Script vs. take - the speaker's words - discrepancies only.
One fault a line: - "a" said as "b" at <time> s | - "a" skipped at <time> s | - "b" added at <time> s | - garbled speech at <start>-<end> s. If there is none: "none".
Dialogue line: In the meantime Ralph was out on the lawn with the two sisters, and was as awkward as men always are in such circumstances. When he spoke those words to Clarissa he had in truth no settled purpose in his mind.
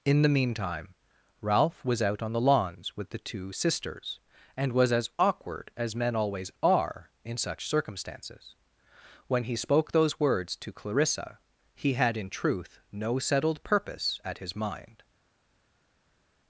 - "lawn" said as "lawns" at 2.4 s
- "in" said as "at" at 14.2 s